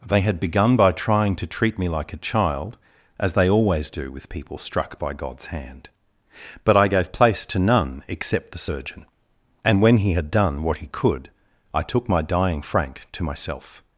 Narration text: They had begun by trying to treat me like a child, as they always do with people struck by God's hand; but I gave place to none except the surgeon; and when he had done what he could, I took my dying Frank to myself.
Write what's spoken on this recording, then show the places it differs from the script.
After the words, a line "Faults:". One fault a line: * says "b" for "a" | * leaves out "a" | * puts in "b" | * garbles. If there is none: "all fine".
They had begun by trying to treat me like a child, as they always do with people struck by God's hand; but I gave place to none except the surgeon; and when he had done what he could, I took my dying Frank to myself.
Faults:
all fine